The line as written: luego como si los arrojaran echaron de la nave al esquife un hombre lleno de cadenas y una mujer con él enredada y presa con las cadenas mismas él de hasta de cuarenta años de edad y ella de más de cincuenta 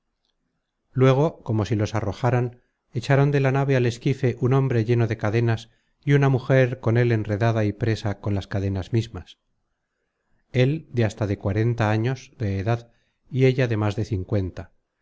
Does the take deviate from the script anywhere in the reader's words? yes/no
no